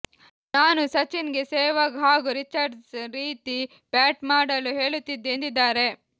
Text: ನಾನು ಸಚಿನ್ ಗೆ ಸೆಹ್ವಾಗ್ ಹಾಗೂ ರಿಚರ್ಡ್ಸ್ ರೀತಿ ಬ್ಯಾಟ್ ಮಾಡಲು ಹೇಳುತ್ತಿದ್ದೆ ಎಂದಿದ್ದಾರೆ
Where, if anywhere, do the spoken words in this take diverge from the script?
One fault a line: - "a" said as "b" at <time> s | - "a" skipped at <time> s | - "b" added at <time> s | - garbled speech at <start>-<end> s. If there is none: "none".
none